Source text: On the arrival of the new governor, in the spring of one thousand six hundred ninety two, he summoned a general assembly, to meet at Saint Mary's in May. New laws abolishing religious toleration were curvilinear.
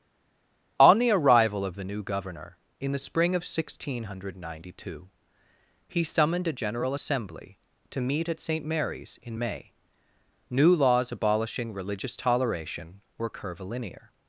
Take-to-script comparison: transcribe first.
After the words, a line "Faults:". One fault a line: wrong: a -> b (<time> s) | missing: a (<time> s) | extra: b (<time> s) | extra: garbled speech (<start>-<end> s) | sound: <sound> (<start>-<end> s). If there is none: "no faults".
On the arrival of the new governor, in the spring of one thousand six hundred ninety two, he summoned a general assembly, to meet at Saint Mary's in May. New laws abolishing religious toleration were curvilinear.
Faults:
no faults